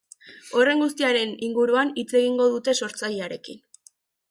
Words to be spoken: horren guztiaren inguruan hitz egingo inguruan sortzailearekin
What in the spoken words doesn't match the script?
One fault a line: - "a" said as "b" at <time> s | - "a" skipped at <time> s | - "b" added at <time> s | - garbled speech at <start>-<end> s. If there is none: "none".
- "inguruan" said as "dute" at 2.6 s